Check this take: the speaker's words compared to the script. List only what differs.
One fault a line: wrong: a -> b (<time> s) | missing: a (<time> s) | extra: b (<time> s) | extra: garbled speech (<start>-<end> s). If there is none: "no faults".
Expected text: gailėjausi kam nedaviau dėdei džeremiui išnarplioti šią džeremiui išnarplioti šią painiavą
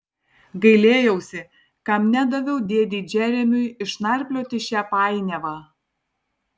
missing: džeremiui išnarplioti šią (4.8 s)